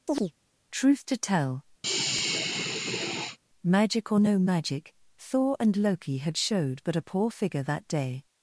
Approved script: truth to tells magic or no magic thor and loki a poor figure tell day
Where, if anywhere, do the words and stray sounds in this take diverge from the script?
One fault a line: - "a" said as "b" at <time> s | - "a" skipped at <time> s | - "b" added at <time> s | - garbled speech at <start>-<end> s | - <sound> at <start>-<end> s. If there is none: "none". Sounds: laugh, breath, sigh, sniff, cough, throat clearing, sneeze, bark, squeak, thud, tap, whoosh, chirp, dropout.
- chirp at 0.1-0.3 s
- "tells" said as "tell" at 1.2 s
- sigh at 1.8-3.4 s
- "had showed but" added at 6.2 s
- "tell" said as "that" at 7.6 s